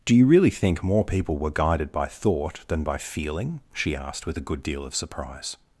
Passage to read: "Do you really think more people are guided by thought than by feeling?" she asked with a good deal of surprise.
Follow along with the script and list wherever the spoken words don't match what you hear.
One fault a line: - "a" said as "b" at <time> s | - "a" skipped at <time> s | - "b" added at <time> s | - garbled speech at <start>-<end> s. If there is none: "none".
- "are" said as "were" at 1.4 s